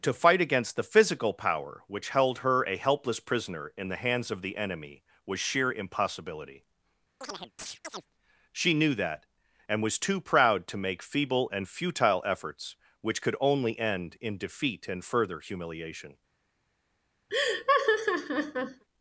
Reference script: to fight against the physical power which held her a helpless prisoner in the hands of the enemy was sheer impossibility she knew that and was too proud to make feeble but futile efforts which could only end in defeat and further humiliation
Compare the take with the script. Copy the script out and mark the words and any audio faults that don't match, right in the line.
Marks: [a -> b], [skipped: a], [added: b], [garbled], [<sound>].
to fight against the physical power which held her a helpless prisoner in the hands of the enemy was sheer impossibility [chirp] she knew that and was too proud to make feeble [but -> and] futile efforts which could only end in defeat and further humiliation [laugh]